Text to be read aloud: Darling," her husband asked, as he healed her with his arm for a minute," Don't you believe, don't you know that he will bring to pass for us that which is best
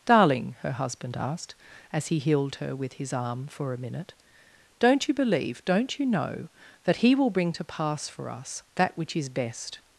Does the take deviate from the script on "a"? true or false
false